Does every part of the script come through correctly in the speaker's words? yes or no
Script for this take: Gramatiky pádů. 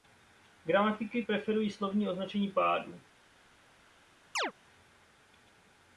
no